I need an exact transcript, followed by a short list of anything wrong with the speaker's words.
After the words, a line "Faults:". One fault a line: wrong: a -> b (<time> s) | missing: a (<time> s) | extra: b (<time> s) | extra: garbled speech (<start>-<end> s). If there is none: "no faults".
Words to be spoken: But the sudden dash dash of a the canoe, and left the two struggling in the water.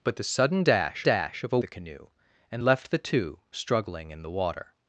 But the sudden dash dash of a the canoe, and left the two struggling in the water.
Faults:
no faults